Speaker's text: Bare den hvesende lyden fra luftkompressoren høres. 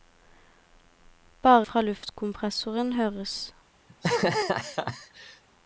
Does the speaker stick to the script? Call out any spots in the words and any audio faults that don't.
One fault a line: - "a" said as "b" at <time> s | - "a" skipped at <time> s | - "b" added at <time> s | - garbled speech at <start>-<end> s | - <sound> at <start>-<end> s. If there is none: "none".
- "den hvesende lyden" skipped at 1.7 s
- laugh at 3.9-5.4 s